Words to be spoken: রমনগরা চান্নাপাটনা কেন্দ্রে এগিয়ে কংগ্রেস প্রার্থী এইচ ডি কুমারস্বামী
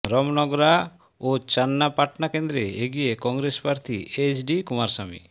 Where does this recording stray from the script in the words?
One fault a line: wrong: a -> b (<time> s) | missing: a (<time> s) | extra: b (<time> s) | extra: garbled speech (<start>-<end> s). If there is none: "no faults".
extra: ও (1.2 s)